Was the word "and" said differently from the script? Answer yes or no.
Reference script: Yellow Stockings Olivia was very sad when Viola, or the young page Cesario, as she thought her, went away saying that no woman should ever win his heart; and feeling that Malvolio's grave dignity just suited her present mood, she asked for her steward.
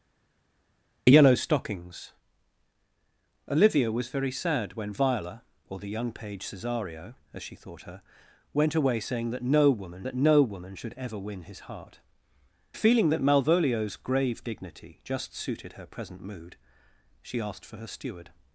yes